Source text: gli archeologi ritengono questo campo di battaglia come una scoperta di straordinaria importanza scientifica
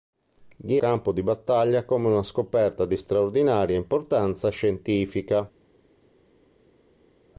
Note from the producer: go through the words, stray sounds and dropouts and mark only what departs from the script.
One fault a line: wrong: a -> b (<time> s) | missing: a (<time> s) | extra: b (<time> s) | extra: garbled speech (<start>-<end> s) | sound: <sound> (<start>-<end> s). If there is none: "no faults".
missing: archeologi ritengono questo (0.8 s)